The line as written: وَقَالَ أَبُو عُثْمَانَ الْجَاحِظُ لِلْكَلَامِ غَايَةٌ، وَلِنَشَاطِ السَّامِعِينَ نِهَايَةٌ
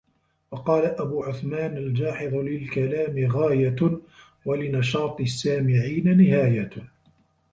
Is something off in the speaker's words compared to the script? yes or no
no